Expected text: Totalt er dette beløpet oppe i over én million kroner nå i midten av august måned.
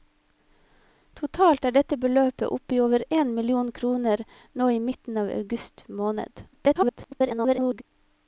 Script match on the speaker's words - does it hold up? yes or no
no